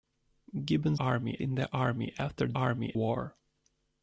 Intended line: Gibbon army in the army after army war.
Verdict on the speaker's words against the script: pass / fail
pass